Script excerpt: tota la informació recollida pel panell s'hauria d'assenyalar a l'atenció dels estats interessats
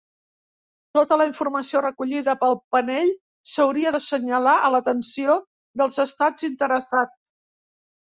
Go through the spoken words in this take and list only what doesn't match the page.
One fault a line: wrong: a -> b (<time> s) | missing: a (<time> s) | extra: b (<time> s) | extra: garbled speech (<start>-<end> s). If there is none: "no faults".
no faults